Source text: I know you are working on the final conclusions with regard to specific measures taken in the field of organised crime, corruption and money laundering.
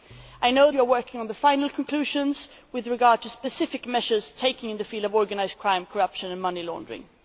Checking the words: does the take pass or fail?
pass